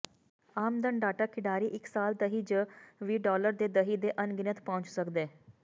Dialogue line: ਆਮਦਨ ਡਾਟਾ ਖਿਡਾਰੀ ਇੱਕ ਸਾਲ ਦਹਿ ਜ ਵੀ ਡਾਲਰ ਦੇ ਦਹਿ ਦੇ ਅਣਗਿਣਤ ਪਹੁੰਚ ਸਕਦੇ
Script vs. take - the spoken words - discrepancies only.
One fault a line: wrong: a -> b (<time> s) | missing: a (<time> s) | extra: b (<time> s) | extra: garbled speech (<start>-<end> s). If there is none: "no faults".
no faults